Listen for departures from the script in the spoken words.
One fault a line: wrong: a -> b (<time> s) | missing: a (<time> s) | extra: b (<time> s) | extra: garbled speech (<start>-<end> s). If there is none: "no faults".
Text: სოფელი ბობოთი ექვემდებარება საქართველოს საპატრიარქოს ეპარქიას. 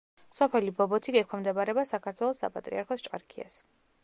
no faults